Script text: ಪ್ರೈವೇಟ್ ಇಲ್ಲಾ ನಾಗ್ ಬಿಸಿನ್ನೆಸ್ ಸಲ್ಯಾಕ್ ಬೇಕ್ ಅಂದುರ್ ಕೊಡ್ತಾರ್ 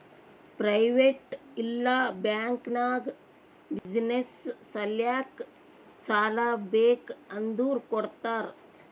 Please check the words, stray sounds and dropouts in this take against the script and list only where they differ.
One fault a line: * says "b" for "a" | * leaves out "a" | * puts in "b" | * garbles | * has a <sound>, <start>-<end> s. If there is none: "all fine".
* puts in "ಬ್ಯಾಂಕ್"
* has a dropout, 3.8-3.9 s
* puts in "ಸಾಲಾ"